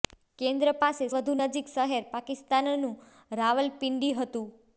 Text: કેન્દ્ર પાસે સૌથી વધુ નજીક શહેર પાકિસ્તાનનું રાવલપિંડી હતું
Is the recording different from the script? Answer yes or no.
yes